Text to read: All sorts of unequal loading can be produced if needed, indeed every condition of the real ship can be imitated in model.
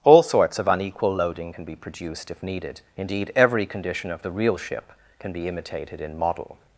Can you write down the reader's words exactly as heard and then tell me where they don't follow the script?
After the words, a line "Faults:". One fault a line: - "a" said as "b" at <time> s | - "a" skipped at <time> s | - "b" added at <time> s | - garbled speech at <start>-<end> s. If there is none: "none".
All sorts of unequal loading can be produced if needed, indeed every condition of the real ship can be imitated in model.
Faults:
none